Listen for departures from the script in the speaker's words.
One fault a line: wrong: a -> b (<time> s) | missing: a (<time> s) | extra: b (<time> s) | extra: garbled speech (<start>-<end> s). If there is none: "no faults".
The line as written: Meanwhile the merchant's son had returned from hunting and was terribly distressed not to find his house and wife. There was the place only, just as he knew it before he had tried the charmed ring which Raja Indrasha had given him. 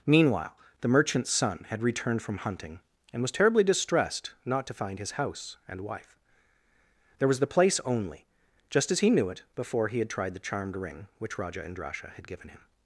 no faults